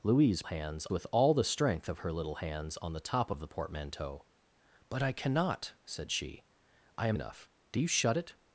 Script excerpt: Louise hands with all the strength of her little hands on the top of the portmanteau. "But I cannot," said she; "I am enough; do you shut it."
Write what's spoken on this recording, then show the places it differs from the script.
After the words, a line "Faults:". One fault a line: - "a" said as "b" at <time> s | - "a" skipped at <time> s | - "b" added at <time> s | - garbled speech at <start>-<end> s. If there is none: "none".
Louise hands with all the strength of her little hands on the top of the portmanteau. "But I cannot," said she; "I am enough; do you shut it."
Faults:
none